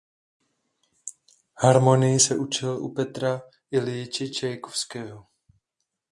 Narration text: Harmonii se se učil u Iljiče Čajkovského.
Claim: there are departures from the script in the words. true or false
true